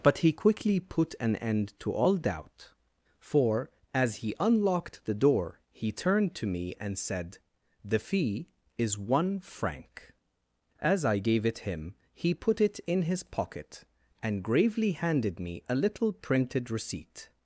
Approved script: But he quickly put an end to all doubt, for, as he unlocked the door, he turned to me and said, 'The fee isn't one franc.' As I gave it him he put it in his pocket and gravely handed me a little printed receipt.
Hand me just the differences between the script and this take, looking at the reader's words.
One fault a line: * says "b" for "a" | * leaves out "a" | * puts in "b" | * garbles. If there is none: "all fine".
* says "is" for "isn't"